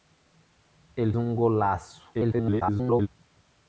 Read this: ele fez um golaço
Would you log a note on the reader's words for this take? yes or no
yes